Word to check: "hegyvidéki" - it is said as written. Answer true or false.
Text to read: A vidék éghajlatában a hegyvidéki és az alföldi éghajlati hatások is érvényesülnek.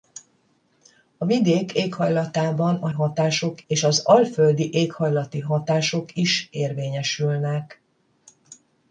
false